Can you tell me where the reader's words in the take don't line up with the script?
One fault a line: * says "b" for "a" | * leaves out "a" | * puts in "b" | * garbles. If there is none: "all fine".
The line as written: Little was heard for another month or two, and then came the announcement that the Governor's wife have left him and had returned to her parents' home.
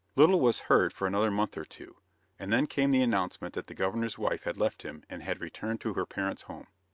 * says "had" for "have"